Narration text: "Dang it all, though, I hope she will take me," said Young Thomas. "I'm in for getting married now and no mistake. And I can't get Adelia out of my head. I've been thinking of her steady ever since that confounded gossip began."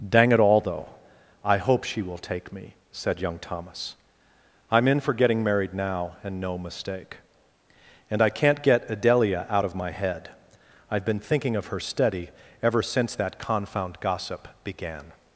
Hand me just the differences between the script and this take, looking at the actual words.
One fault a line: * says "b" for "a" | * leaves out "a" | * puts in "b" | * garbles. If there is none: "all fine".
* says "confound" for "confounded"